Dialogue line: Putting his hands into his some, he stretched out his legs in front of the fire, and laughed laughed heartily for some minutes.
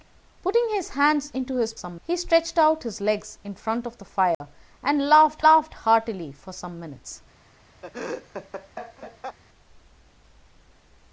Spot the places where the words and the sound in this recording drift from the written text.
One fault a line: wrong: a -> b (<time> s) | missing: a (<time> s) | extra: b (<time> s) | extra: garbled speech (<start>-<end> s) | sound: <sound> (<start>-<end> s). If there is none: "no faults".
sound: dropout (4.3-4.4 s)
sound: laugh (7.8-9.4 s)